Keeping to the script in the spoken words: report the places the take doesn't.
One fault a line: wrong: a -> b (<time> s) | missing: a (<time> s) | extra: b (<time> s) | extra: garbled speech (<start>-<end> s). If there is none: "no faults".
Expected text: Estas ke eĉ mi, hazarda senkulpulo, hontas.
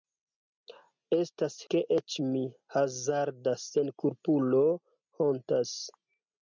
no faults